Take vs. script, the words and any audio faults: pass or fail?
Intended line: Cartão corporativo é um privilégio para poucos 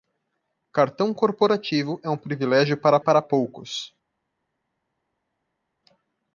fail